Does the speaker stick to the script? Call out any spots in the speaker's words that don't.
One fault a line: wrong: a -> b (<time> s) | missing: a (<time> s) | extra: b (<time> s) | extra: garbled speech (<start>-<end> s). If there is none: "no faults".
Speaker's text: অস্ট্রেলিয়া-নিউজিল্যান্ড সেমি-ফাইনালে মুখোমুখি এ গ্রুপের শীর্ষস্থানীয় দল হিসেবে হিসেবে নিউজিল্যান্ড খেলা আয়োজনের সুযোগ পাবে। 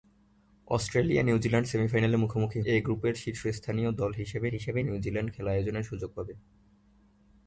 no faults